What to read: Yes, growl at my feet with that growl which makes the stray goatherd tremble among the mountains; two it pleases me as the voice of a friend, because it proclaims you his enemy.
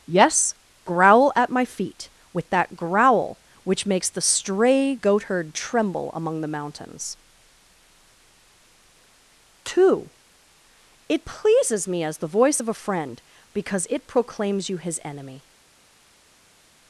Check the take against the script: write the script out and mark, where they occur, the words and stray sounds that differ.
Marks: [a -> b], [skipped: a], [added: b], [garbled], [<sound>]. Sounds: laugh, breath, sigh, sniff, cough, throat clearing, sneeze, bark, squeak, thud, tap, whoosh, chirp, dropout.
Yes, growl at my feet with that growl which makes the stray goatherd tremble among the mountains; two it pleases me as the voice of a friend, because it proclaims you his enemy.